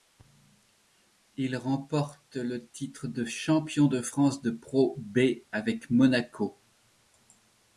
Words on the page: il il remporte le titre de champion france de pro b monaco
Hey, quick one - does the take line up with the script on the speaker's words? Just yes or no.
no